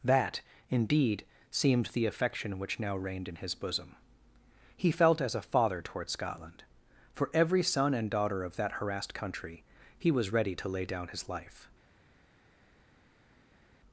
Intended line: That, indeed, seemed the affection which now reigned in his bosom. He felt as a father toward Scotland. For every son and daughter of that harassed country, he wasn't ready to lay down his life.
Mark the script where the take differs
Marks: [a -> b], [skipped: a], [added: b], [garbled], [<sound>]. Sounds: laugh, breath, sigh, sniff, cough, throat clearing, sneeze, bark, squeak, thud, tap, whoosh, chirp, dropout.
That, indeed, seemed the affection which now reigned in his bosom. He felt as a father toward Scotland. For every son and daughter of that harassed country, he [wasn't -> was] ready to lay down his life.